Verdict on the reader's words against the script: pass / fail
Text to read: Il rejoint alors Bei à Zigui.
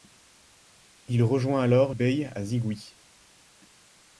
pass